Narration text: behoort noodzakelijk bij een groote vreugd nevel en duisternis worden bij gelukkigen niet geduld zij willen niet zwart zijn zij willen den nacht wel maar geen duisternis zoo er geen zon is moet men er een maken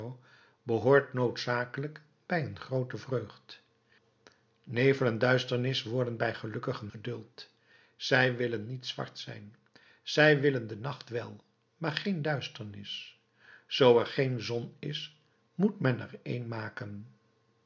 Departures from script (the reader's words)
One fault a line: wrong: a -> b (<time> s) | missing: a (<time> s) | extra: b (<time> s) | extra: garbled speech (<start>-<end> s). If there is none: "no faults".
missing: niet (6.9 s)